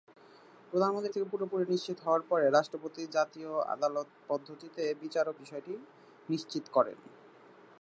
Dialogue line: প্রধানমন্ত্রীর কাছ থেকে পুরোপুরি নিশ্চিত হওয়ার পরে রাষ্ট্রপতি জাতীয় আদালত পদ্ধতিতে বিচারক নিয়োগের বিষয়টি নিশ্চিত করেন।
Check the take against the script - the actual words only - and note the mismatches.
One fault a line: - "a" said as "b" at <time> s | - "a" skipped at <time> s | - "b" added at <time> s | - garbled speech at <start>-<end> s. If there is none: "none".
- "কাছ" skipped at 1.1 s
- "নিয়োগের" skipped at 5.4 s